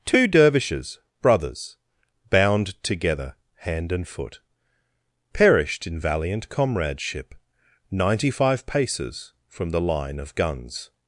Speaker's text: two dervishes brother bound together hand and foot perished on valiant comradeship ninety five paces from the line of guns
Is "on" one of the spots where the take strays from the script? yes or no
yes